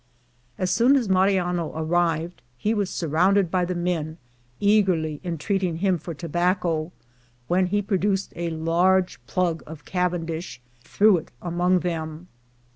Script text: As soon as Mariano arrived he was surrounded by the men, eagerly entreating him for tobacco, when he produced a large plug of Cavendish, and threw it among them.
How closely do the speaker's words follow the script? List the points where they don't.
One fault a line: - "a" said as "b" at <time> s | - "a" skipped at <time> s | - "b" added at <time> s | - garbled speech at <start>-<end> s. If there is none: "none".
- "and" skipped at 10.6 s